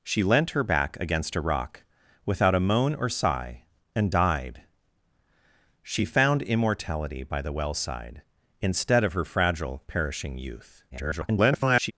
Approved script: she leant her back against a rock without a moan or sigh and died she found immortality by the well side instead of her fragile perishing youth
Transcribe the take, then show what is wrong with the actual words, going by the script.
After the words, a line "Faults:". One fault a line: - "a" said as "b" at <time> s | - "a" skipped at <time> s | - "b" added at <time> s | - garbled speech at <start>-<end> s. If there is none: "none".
she leant her back against a rock without a moan or sigh and died she found immortality by the well side instead of her fragile perishing youth [garbled]
Faults:
- garbled speech at 10.9-11.9 s